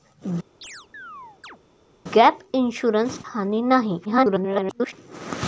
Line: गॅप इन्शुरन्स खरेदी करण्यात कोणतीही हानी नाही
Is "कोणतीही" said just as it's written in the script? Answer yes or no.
no